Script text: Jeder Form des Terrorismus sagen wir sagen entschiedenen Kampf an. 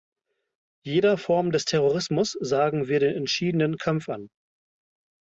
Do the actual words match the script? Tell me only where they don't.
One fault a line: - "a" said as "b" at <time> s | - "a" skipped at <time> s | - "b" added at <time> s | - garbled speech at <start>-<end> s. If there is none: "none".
- "sagen" said as "den" at 3.0 s